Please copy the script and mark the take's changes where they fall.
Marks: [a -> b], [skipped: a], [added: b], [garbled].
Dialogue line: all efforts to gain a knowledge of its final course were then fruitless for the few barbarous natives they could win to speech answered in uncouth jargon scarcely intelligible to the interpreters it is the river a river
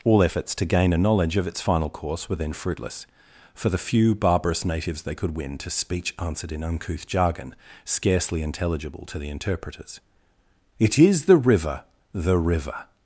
all efforts to gain a knowledge of its final course were then fruitless for the few barbarous natives they could win to speech answered in uncouth jargon scarcely intelligible to the interpreters it is the river [a -> the] river